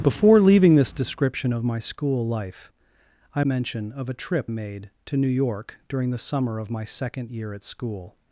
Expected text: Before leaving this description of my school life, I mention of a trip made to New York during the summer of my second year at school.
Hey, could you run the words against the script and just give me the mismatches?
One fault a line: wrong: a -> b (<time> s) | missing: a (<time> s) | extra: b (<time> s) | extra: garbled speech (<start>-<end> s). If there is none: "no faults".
no faults